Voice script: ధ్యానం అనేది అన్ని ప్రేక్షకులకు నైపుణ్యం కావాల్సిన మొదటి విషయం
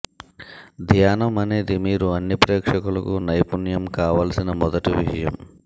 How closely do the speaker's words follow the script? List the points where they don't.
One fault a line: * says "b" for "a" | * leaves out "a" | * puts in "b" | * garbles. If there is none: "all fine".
* puts in "మీరు"